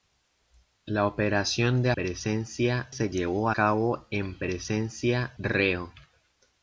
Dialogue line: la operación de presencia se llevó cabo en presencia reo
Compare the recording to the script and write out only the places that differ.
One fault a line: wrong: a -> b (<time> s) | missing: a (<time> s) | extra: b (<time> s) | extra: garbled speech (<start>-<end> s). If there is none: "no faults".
no faults